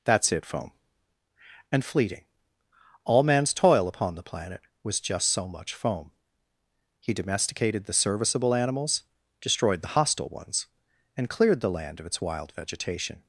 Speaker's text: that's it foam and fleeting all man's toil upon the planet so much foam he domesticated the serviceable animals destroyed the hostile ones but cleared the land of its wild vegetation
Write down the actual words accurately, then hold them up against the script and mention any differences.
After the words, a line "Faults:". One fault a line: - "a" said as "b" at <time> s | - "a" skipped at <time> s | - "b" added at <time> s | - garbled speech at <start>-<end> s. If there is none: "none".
that's it foam and fleeting all man's toil upon the planet was just so much foam he domesticated the serviceable animals destroyed the hostile ones and cleared the land of its wild vegetation
Faults:
- "was just" added at 4.8 s
- "but" said as "and" at 11.2 s